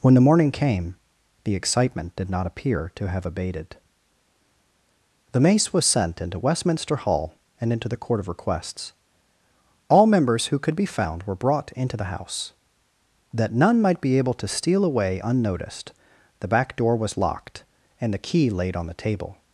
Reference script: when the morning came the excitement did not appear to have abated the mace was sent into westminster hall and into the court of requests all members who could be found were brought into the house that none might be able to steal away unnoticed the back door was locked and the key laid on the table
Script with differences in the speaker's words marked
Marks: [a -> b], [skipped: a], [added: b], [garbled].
when the morning came the excitement did not appear to have abated the mace was sent into westminster hall and into the court of requests all members who could be found were brought into the house that none might be able to steal away unnoticed the back door was locked and the key laid on the table